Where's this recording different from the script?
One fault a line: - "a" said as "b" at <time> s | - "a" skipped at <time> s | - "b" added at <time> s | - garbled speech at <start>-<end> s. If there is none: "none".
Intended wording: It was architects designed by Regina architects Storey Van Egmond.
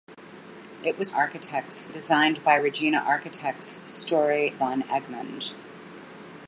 none